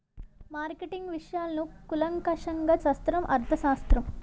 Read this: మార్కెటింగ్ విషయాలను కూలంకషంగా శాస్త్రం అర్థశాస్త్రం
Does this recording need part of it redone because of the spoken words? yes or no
no